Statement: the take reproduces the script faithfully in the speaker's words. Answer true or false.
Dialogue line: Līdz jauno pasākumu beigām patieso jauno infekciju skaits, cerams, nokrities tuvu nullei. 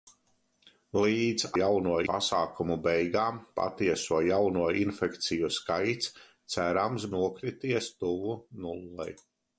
true